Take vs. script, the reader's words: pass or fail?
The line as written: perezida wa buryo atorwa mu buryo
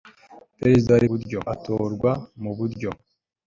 pass